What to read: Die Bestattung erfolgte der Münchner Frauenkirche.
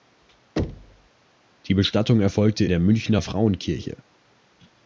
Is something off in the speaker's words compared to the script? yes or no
no